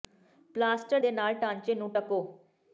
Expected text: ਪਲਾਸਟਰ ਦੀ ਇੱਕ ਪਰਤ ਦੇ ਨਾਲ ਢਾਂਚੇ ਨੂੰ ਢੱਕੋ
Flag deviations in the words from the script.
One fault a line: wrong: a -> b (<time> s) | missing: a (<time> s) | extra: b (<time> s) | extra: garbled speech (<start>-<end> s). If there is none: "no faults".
missing: ਦੀ ਇੱਕ ਪਰਤ (1.0 s)